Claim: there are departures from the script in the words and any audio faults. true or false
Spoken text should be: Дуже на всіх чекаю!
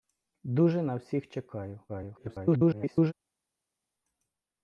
true